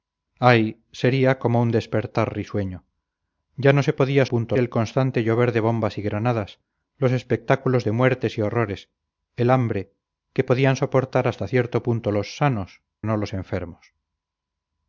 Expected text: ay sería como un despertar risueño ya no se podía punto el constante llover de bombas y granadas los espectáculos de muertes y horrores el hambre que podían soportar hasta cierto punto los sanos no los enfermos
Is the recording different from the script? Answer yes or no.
no